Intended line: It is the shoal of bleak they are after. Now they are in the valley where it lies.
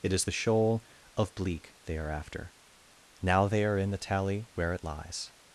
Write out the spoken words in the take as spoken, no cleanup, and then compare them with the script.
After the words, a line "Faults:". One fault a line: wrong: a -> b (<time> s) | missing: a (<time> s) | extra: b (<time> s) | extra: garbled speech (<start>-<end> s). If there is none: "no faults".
It is the shoal of bleak they are after. Now they are in the tally where it lies.
Faults:
wrong: valley -> tally (4.0 s)